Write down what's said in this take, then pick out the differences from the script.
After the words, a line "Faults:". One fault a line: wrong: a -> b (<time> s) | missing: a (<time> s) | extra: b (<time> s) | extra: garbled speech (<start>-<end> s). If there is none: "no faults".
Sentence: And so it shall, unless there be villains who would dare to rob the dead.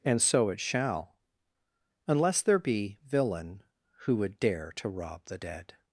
And so it shall, unless there be villain who would dare to rob the dead.
Faults:
wrong: villains -> villain (3.0 s)